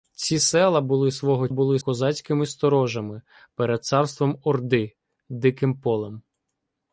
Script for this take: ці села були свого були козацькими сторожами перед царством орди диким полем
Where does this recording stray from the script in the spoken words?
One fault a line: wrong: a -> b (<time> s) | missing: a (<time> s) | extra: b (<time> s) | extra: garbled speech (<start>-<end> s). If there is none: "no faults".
no faults